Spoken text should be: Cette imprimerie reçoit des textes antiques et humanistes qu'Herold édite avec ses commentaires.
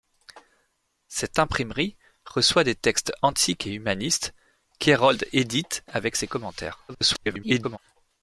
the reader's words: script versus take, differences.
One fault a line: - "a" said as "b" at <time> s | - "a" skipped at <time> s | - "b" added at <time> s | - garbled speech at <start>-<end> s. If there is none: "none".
- garbled speech at 6.9-7.8 s